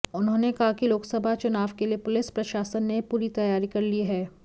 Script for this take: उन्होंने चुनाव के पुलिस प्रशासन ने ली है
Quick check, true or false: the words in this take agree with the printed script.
false